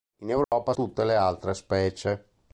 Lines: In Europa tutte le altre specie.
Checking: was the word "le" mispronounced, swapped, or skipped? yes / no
no